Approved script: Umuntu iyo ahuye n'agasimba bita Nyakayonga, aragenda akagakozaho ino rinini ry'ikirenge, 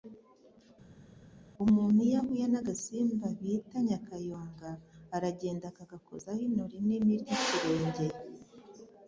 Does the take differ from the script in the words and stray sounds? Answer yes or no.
no